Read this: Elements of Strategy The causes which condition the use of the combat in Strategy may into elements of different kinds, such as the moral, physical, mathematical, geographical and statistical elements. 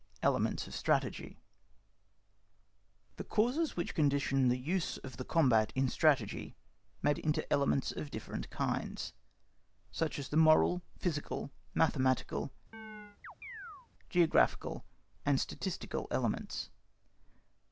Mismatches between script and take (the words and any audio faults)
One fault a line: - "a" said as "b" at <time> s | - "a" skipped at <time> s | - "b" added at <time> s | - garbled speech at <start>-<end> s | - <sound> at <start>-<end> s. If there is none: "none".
- chirp at 12.7-13.9 s